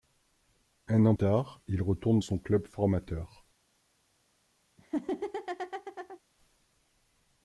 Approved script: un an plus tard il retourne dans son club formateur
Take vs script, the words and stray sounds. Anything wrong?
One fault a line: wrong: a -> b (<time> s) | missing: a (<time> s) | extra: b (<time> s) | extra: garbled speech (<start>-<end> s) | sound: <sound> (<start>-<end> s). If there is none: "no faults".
missing: plus (1.1 s)
missing: dans (2.2 s)
sound: laugh (4.8-6.2 s)